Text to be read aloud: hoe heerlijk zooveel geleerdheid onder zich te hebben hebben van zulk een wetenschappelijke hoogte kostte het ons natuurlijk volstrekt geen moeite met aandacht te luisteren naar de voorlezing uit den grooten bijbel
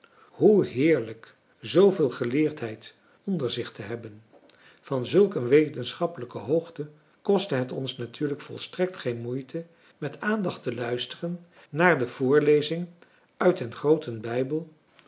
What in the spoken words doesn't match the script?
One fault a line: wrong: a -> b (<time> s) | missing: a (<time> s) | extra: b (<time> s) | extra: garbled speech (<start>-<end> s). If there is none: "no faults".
missing: hebben (4.2 s)